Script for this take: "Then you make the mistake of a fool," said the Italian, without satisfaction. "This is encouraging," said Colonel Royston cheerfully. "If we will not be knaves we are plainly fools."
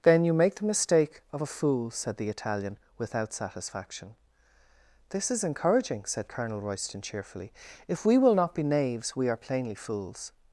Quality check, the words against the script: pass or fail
pass